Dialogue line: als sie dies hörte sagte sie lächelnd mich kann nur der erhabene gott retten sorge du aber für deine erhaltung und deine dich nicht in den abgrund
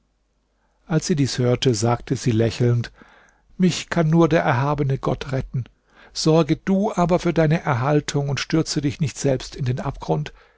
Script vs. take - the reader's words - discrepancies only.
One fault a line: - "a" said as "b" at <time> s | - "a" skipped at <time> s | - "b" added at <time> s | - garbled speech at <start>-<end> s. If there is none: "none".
- "deine" said as "stürze" at 8.4 s
- "selbst" added at 9.2 s